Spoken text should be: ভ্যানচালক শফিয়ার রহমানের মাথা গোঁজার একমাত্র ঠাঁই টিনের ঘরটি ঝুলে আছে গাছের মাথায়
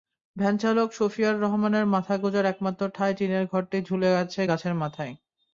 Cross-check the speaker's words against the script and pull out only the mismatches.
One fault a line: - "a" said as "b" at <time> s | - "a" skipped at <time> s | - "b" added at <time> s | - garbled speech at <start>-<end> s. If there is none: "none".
none